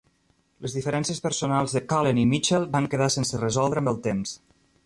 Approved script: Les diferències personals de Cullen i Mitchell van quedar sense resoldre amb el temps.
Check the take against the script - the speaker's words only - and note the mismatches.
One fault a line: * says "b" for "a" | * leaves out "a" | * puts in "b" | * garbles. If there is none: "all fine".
all fine